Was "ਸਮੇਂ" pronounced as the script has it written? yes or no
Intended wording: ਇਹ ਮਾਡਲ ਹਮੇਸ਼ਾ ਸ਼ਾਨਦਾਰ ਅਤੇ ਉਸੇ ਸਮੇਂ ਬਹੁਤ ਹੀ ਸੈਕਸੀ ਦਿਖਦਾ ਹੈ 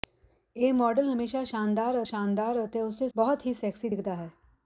no